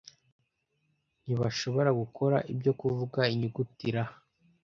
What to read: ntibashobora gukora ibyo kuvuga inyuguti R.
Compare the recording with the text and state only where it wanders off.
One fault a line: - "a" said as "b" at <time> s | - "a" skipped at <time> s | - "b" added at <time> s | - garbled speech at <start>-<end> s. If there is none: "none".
none